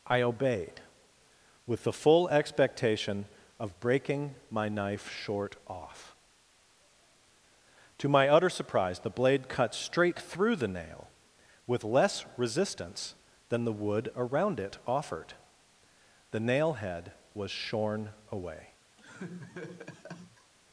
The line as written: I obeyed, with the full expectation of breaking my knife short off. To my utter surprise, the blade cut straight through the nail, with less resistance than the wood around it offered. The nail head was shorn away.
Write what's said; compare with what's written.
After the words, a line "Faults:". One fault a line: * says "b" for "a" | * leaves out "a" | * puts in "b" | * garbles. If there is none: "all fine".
I obeyed, with the full expectation of breaking my knife short off. To my utter surprise, the blade cut straight through the nail, with less resistance than the wood around it offered. The nail head was shorn away.
Faults:
all fine